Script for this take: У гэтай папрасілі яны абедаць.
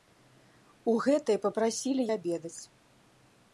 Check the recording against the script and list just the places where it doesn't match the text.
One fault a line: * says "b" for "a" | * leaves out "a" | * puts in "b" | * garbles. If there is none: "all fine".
* leaves out "яны"